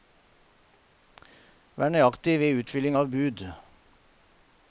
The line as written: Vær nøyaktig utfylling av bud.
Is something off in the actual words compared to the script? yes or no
yes